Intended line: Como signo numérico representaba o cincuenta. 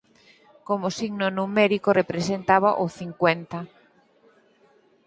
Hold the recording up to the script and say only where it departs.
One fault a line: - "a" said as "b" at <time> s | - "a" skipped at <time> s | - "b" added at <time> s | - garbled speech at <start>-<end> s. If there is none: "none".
none